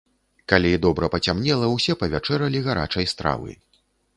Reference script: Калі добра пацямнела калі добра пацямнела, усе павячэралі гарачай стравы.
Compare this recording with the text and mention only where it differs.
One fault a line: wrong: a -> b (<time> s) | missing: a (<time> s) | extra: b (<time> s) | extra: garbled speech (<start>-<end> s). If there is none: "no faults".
missing: калі добра пацямнела (1.7 s)